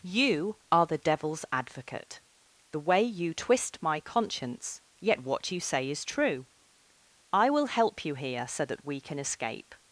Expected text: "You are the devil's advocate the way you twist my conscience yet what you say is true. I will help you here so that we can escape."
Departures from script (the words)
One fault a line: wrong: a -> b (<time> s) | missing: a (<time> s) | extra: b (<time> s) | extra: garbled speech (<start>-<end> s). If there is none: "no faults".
no faults